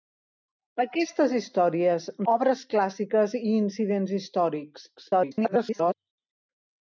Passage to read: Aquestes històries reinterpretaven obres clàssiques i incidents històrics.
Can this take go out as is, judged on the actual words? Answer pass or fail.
fail